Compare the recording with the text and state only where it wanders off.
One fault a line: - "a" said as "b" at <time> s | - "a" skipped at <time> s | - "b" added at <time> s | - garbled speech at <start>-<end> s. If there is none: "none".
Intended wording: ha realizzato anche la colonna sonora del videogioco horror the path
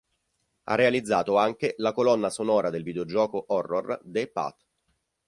none